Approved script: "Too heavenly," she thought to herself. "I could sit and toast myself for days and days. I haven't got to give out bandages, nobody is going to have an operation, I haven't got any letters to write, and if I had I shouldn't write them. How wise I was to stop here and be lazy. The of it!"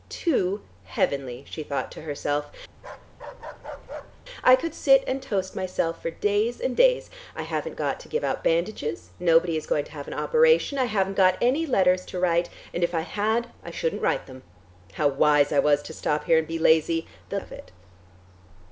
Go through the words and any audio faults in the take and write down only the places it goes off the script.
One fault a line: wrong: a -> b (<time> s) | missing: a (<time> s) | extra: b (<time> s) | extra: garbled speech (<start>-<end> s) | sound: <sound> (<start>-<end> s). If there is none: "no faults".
sound: bark (2.8-4.2 s)